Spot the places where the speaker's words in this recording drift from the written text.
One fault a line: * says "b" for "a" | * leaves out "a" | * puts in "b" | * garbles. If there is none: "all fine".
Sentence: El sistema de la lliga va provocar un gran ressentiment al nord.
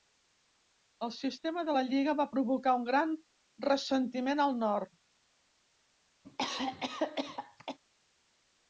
all fine